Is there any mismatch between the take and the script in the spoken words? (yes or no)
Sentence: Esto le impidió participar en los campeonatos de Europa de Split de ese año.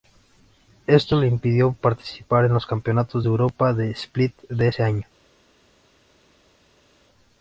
no